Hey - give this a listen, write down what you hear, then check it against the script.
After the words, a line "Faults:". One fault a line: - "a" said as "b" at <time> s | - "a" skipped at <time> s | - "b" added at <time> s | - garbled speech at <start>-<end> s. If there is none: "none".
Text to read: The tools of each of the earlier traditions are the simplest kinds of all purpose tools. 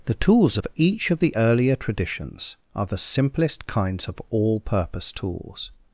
The tools of each of the earlier traditions are the simplest kinds of all purpose tools.
Faults:
none